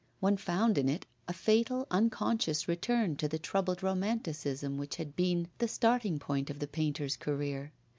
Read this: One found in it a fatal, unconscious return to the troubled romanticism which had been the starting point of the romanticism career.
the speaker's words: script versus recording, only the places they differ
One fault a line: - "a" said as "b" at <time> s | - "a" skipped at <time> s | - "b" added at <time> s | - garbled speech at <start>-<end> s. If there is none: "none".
- "romanticism" said as "painter's" at 6.7 s